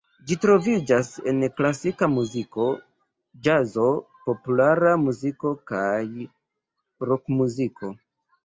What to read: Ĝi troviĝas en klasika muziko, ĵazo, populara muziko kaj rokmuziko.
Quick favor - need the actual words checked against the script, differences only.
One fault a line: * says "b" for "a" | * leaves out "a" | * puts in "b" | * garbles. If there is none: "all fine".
all fine